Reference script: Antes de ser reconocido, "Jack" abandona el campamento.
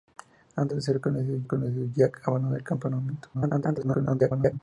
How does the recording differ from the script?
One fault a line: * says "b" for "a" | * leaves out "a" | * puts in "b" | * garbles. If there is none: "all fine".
* puts in "reconocido"
* garbles